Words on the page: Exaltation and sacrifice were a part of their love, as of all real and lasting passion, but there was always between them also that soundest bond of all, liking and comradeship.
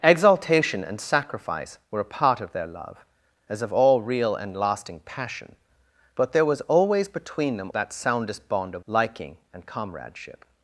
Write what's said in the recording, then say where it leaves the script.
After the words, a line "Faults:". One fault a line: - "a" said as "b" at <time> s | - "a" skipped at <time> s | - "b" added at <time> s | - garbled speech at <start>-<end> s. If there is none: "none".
Exaltation and sacrifice were a part of their love, as of all real and lasting passion, but there was always between them that soundest bond of liking and comradeship.
Faults:
- "also" skipped at 7.7 s
- "all" skipped at 8.9 s